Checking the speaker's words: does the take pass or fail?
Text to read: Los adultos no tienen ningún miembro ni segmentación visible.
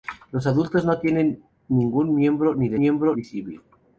fail